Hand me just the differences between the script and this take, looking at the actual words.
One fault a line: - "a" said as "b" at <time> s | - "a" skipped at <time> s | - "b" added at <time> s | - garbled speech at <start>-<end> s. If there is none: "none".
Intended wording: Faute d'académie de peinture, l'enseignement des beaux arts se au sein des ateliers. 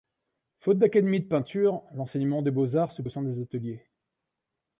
none